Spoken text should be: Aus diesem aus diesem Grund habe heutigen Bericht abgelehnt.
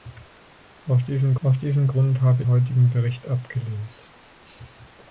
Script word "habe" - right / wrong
right